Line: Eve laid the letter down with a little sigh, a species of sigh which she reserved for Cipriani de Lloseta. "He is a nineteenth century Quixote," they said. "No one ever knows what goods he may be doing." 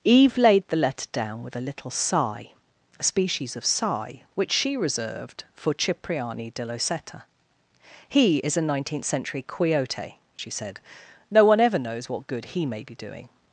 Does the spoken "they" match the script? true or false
false